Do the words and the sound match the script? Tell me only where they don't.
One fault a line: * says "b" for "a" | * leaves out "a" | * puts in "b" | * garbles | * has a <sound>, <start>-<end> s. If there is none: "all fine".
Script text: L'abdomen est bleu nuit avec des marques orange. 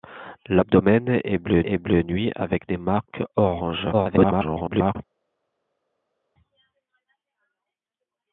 * puts in "est bleu"
* garbles